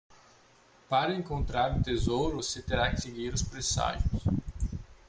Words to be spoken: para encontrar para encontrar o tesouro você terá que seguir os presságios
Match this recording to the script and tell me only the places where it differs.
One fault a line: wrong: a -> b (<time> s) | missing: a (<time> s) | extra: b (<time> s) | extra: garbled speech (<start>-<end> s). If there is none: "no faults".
missing: para encontrar (1.8 s)